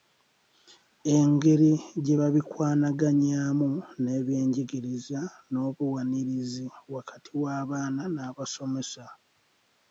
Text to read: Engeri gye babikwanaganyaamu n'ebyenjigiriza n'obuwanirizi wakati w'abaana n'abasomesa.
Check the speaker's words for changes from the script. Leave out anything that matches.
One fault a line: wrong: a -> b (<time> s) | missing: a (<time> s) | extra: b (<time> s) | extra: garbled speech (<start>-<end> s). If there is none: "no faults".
no faults